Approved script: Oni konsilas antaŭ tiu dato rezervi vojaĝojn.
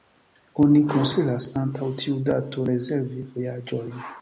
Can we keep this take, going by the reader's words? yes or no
yes